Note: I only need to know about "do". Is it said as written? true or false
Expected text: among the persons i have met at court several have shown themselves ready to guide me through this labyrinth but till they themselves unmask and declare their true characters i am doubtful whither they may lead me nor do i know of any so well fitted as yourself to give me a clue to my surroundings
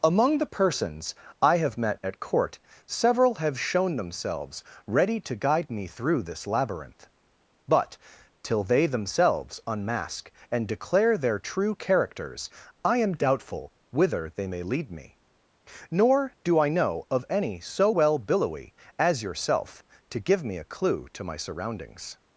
true